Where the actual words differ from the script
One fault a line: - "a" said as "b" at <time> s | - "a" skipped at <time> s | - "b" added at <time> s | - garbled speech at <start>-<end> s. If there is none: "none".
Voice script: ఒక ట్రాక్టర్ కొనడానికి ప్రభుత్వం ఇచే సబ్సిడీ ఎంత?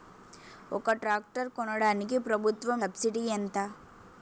- "ఇచే" skipped at 2.8 s